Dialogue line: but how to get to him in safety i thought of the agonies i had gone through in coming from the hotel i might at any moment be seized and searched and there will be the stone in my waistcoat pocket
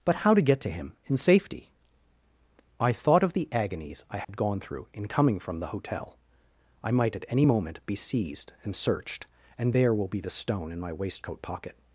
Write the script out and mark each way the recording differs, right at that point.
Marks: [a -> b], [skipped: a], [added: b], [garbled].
but how to get to him in safety i thought of the agonies i had gone through in coming from the hotel i might at any moment be seized and searched and there will be the stone in my waistcoat pocket